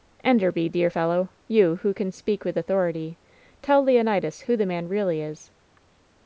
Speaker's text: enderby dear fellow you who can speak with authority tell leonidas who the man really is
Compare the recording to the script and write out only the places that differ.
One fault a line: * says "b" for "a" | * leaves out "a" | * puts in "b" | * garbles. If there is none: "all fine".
all fine